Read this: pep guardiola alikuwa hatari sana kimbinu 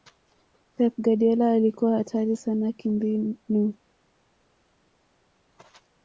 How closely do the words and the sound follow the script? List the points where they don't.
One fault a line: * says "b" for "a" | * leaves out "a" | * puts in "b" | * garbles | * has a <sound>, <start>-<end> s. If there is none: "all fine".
all fine